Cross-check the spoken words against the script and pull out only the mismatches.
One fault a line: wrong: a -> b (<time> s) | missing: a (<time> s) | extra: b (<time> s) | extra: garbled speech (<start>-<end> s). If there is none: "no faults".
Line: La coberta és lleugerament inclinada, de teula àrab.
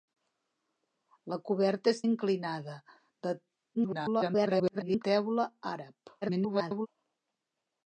missing: lleugerament (2.0 s)
extra: garbled speech (3.7-5.0 s)
extra: garbled speech (6.2-6.9 s)